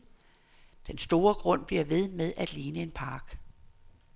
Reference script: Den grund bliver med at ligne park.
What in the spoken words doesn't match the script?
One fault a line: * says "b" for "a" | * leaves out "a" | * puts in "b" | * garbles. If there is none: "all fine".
* puts in "store"
* puts in "ved"
* puts in "en"